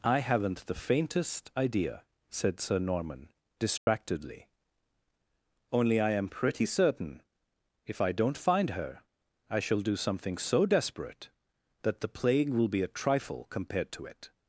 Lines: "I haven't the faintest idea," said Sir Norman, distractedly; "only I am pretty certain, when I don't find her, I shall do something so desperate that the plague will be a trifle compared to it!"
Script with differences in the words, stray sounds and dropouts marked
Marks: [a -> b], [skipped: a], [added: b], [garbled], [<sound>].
"I haven't the faintest idea," said Sir Norman, distractedly; [dropout] "only I am pretty certain, [when -> if] I don't find her, I shall do something so desperate that the plague will be a trifle compared to it!"